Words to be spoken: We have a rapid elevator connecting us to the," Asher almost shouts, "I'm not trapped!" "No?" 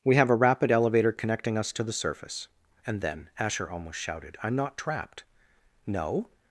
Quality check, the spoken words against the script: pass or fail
fail